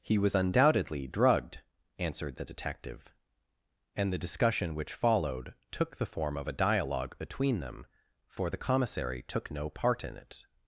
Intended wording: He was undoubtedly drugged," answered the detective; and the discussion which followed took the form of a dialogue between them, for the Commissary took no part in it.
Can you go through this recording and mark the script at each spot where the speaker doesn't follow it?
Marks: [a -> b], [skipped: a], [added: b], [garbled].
He was undoubtedly drugged," answered the detective; and the discussion which followed took the form of a dialogue between them, for the Commissary took no part in it.